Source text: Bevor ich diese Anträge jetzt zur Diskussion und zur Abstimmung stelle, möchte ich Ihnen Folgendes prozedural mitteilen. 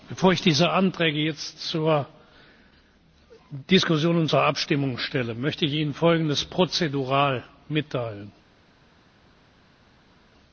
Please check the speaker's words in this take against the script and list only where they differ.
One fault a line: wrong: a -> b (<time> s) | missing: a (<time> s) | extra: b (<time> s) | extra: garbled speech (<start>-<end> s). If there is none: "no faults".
no faults